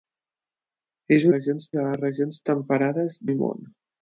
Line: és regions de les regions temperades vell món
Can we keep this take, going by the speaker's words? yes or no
yes